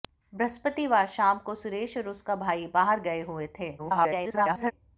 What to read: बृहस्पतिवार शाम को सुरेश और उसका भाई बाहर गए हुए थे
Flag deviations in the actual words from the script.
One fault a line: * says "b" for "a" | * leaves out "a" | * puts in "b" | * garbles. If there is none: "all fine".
* garbles